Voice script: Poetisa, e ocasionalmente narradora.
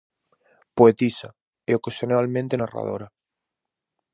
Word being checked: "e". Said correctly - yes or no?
yes